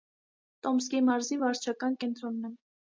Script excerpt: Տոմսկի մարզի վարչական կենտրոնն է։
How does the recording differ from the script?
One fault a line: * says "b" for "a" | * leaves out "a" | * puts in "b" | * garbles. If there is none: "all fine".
all fine